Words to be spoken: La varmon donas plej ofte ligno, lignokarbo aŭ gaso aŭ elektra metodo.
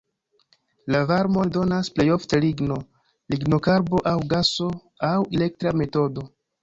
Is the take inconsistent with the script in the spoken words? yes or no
no